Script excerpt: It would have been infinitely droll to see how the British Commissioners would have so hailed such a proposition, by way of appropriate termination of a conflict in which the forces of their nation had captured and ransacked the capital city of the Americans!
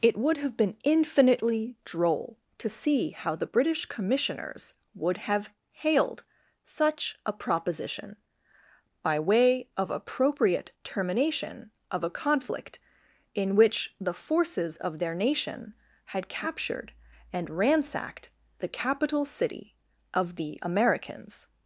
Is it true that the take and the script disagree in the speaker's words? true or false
true